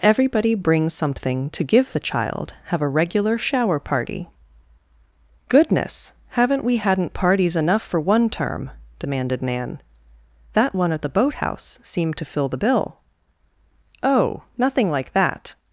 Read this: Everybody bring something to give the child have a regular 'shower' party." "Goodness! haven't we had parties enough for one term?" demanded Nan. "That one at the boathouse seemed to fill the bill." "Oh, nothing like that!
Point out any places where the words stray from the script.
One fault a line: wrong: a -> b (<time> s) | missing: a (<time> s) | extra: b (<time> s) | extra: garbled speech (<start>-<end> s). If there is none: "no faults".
wrong: had -> hadn't (6.8 s)